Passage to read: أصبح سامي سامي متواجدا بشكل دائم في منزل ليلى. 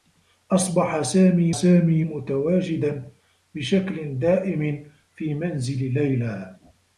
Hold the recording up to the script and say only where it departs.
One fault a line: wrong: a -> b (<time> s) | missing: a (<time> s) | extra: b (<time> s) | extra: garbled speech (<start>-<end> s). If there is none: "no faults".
no faults